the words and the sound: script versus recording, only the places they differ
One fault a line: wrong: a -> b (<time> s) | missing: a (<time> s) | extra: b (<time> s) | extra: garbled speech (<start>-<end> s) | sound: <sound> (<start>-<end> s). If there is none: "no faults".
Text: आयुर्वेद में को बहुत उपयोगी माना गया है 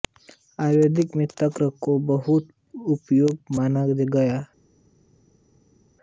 extra: तक्र (1.3 s)